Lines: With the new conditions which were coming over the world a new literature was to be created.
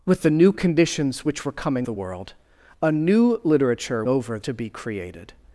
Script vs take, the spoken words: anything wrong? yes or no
yes